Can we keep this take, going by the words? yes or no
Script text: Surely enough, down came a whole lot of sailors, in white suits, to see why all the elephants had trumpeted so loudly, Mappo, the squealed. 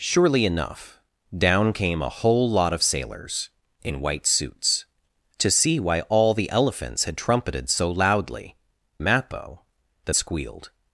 yes